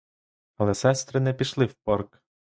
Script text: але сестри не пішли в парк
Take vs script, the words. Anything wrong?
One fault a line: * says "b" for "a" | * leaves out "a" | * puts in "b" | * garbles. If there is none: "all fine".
all fine